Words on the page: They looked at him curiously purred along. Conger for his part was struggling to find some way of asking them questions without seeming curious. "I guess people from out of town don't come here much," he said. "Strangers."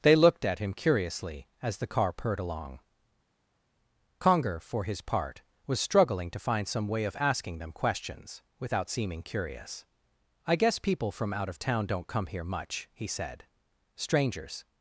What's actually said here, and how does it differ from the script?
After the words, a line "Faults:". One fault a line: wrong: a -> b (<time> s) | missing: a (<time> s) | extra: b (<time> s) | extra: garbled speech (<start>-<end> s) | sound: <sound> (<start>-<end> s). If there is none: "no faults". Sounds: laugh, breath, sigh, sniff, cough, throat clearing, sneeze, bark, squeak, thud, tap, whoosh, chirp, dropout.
They looked at him curiously as the car purred along. Conger for his part was struggling to find some way of asking them questions without seeming curious. "I guess people from out of town don't come here much," he said. "Strangers."
Faults:
extra: as the car (1.6 s)